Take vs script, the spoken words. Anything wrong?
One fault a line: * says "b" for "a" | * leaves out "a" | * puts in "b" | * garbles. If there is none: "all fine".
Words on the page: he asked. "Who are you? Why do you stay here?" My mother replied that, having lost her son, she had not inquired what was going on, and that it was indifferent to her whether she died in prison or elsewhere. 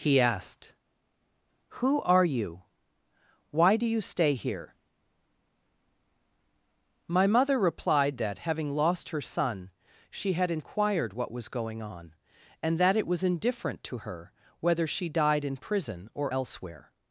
* leaves out "not"